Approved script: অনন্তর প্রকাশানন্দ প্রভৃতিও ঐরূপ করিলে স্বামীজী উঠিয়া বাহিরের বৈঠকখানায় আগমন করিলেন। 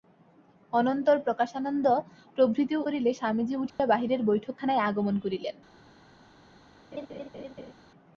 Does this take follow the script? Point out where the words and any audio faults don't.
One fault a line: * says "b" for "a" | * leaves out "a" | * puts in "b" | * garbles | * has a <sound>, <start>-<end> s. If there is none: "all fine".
* leaves out "ঐরূপ"
* has a dropout, 3.7-3.8 s
* has a laugh, 6.9-7.7 s